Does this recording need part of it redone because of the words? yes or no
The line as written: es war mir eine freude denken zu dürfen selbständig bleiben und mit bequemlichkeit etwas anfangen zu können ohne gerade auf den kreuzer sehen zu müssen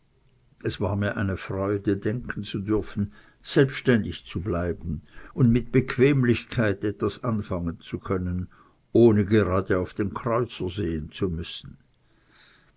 yes